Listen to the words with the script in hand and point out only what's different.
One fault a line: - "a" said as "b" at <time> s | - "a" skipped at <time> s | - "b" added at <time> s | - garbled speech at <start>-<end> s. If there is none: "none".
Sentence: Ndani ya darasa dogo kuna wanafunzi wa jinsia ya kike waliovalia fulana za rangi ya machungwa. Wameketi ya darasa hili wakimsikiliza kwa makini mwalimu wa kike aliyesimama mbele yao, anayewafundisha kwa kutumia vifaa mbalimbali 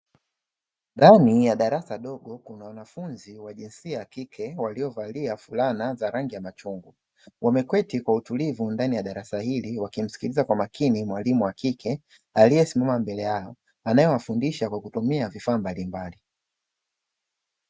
- "kwa utulivu ndani" added at 8.0 s